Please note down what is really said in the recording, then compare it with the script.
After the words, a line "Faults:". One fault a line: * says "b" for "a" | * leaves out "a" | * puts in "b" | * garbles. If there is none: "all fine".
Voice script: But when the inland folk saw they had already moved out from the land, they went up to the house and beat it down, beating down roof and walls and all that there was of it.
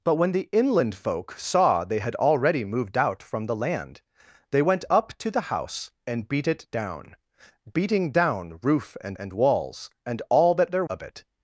But when the inland folk saw they had already moved out from the land, they went up to the house and beat it down, beating down roof and and walls and all that there of it.
Faults:
* puts in "and"
* leaves out "was"